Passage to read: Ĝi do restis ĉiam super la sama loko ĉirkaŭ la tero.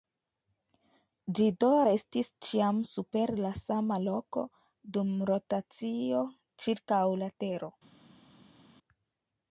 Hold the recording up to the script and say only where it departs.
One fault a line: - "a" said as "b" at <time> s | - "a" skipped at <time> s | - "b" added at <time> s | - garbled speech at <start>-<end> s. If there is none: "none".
- "dum rotacio" added at 5.0 s